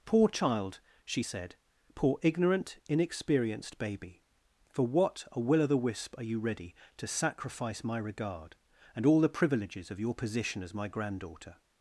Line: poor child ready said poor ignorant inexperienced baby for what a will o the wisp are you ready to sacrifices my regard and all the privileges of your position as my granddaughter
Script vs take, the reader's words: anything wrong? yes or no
yes